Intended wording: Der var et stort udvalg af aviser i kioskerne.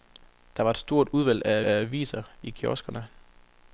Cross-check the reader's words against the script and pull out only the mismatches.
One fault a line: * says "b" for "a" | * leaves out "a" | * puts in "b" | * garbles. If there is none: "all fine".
* puts in "af"